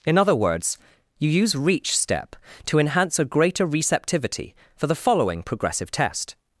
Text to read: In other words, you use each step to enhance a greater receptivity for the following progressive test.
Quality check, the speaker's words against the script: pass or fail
fail